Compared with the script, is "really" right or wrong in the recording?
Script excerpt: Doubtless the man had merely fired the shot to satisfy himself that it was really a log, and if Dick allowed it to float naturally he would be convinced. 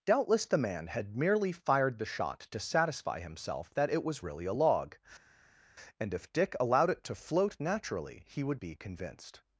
right